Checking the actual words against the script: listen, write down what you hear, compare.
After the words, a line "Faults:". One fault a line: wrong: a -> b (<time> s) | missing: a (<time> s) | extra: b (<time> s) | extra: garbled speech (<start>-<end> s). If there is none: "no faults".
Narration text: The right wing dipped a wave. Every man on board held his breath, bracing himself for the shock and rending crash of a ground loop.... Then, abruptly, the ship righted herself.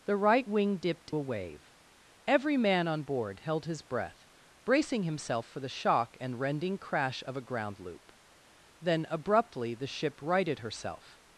The right wing dipped a wave. Every man on board held his breath, bracing himself for the shock and rending crash of a ground loop.... Then, abruptly, the ship righted herself.
Faults:
no faults